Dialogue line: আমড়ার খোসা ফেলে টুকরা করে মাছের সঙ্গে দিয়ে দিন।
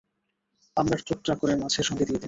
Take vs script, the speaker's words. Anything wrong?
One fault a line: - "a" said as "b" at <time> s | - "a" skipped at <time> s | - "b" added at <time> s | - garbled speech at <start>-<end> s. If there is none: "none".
- "খোসা ফেলে" skipped at 1.0 s